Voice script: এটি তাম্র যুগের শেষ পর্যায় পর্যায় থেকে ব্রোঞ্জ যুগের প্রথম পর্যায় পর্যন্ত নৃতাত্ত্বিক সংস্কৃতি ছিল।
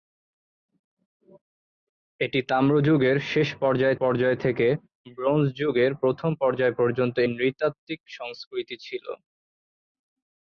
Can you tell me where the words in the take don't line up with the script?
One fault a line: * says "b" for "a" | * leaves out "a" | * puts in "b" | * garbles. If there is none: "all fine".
all fine